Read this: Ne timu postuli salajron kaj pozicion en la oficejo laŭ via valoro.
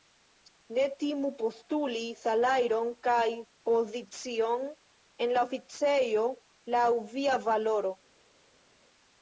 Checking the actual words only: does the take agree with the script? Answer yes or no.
yes